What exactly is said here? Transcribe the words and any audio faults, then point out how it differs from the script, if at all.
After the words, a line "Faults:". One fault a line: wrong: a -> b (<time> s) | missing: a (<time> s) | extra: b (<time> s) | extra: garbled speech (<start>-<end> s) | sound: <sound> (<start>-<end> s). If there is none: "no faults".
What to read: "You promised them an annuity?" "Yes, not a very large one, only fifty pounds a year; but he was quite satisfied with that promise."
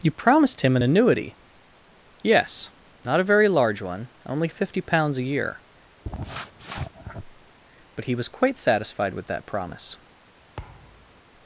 "You promised him an annuity?" "Yes, not a very large one, only fifty pounds a year; but he was quite satisfied with that promise."
Faults:
wrong: them -> him (0.6 s)
sound: sniff (6.0-7.6 s)
sound: thud (10.6-11.2 s)